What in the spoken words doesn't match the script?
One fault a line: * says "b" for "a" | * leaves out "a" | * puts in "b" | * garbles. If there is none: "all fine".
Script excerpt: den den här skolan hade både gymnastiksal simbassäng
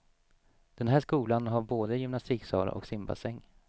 * leaves out "den"
* says "har" for "hade"
* puts in "och"